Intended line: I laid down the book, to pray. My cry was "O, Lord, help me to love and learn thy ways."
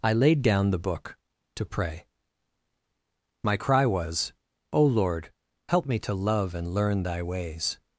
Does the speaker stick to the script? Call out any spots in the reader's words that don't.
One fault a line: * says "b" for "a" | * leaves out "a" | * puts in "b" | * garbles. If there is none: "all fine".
all fine